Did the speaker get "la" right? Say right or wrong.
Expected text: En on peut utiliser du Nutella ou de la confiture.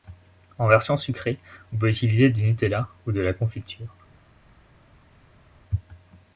right